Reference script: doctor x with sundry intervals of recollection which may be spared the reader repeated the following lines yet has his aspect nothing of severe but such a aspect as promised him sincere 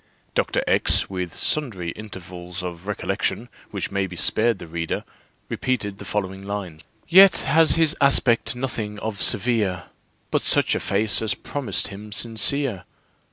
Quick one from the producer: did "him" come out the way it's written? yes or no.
yes